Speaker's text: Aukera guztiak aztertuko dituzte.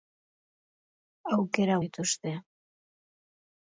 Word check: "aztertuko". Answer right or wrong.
wrong